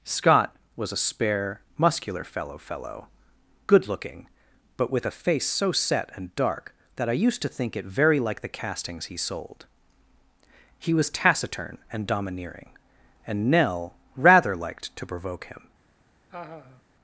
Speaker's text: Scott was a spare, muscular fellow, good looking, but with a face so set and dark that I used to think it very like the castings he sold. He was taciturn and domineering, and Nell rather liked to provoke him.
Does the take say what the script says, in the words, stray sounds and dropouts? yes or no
no